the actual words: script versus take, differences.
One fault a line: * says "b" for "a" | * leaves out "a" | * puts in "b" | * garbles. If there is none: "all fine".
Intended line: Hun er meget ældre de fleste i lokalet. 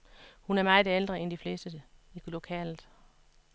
* puts in "end"